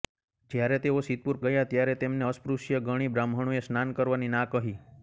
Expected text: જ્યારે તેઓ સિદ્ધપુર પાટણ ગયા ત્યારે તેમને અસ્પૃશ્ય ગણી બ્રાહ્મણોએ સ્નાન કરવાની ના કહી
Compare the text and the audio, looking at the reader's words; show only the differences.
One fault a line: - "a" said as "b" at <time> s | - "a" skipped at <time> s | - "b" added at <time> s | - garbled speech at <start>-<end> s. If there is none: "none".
- "પાટણ" skipped at 1.4 s